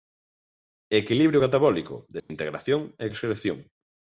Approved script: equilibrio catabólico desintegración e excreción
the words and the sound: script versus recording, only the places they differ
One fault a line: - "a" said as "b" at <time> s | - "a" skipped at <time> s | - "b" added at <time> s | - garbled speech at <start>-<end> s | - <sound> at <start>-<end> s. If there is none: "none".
- dropout at 2.2-2.3 s